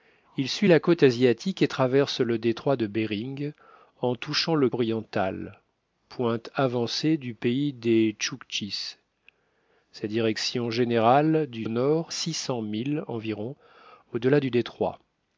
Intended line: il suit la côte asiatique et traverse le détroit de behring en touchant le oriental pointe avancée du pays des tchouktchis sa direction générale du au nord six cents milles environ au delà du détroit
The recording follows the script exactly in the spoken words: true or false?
true